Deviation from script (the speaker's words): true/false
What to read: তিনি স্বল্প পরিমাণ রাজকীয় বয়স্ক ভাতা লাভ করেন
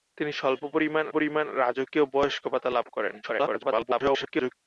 true